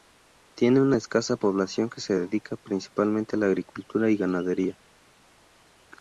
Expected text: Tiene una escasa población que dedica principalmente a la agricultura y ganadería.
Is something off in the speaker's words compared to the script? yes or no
yes